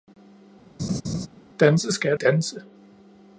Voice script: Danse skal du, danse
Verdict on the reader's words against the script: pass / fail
fail